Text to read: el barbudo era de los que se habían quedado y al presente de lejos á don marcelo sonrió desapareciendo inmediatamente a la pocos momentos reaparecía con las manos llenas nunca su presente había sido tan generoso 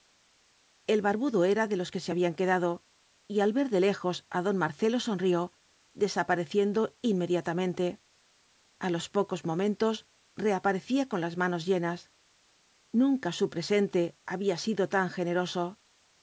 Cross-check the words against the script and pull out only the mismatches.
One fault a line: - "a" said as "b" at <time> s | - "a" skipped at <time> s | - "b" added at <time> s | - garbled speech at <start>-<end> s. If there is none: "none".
- "presente" said as "ver" at 3.6 s
- "la" said as "los" at 8.9 s